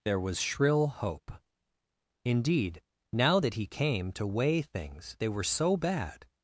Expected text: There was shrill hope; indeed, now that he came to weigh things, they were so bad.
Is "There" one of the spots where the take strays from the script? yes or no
no